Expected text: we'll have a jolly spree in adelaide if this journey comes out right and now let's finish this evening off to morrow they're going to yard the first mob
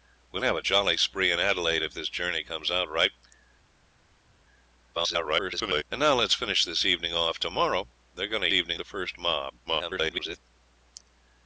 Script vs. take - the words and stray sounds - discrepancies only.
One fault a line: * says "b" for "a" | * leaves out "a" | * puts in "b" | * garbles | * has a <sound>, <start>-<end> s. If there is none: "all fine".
* garbles
* says "evening" for "yard"
* garbles